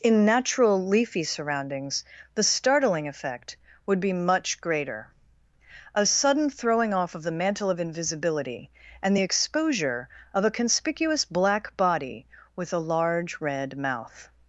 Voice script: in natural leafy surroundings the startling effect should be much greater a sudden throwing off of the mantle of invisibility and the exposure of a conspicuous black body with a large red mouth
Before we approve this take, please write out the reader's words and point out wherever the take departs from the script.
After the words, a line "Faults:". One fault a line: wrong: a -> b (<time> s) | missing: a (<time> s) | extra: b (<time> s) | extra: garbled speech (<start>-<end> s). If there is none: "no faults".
in natural leafy surroundings the startling effect would be much greater a sudden throwing off of the mantle of invisibility and the exposure of a conspicuous black body with a large red mouth
Faults:
wrong: should -> would (3.9 s)